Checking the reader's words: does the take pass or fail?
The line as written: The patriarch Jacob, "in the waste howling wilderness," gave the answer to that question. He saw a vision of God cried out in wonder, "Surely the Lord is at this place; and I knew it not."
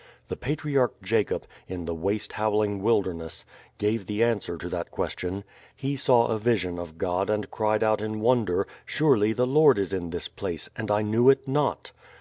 fail